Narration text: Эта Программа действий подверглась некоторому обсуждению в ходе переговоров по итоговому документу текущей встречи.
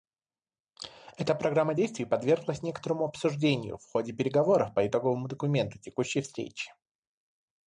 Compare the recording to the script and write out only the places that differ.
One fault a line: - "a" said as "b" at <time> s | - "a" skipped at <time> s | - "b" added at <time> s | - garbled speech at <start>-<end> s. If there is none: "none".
none